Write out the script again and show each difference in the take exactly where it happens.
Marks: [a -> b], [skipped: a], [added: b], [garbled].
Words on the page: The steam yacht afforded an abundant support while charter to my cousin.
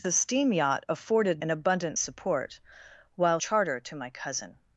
The steam yacht afforded an abundant support while charter to my cousin.